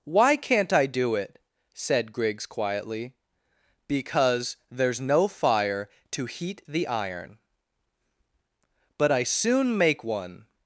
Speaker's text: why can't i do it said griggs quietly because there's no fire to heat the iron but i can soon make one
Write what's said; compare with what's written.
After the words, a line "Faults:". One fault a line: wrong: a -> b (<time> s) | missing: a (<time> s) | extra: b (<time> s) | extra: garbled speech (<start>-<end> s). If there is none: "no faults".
why can't i do it said griggs quietly because there's no fire to heat the iron but i soon make one
Faults:
missing: can (9.2 s)